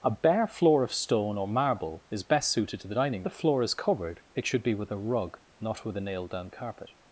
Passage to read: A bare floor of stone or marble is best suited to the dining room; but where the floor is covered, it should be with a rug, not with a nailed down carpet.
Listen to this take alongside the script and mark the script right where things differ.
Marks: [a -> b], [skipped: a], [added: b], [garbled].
A bare floor of stone or marble is best suited to the dining [skipped: room; but where] the floor is covered, it should be with a rug, not with a nailed down carpet.